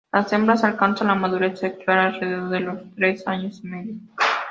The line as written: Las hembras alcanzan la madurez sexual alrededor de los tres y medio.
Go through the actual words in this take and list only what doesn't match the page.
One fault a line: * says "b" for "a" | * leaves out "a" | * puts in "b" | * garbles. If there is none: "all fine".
* puts in "años"